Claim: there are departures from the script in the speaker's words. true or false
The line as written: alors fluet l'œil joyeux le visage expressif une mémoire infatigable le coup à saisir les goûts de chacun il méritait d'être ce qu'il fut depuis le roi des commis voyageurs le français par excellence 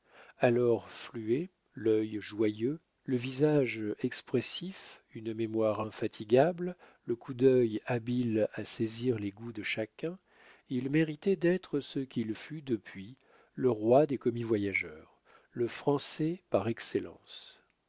true